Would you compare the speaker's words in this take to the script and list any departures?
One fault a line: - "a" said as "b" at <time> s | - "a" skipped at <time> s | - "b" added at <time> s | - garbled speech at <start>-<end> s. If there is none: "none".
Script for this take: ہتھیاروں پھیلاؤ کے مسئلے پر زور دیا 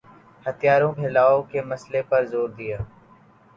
none